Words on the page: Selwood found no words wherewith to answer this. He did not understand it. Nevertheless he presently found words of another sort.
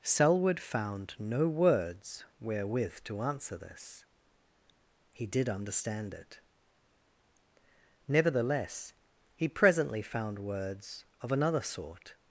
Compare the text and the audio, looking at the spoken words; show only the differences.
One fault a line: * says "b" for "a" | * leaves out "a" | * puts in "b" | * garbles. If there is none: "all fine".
* leaves out "not"